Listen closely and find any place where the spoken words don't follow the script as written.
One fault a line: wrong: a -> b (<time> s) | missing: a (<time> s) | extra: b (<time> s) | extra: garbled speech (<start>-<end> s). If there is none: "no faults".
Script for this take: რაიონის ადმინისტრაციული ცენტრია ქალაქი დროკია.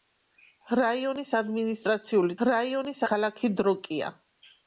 wrong: ცენტრია -> რაიონის (2.5 s)